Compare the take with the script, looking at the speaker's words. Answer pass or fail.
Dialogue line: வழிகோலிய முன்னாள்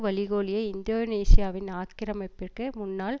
fail